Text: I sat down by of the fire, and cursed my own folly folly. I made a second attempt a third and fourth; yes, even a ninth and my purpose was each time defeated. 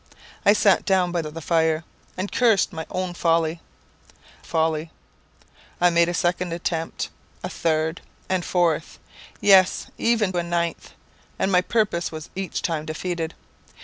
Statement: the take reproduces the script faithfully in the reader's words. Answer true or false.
true